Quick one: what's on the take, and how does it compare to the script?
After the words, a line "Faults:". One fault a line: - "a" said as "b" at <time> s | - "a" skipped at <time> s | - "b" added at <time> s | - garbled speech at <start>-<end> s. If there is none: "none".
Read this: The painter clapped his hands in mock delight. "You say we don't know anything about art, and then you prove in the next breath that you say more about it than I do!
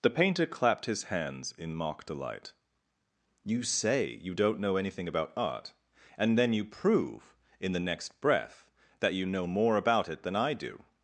The painter clapped his hands in mock delight. "You say you don't know anything about art, and then you prove in the next breath that you know more about it than I do!
Faults:
- "we" said as "you" at 4.2 s
- "say" said as "know" at 9.3 s